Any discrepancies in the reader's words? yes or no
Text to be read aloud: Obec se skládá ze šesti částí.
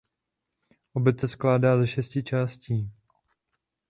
no